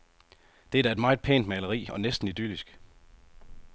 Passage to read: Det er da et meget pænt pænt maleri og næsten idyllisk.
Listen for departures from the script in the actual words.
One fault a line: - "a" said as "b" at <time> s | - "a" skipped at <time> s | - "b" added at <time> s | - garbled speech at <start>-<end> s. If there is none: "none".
- "pænt" skipped at 1.5 s